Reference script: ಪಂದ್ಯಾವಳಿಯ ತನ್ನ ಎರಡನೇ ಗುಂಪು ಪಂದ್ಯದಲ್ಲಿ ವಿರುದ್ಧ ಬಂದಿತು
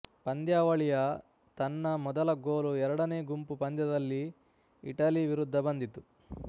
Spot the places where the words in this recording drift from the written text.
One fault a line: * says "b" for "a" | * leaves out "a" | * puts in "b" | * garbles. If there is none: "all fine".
* puts in "ಮೊದಲ ಗೋಲು"
* puts in "ಇಟಲಿ"